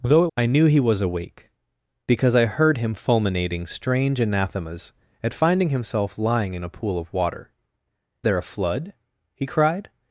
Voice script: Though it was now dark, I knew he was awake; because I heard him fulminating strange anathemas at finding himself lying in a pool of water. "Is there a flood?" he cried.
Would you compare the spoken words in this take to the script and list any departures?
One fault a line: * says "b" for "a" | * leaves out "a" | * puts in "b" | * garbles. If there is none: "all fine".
* leaves out "was now dark"
* leaves out "Is"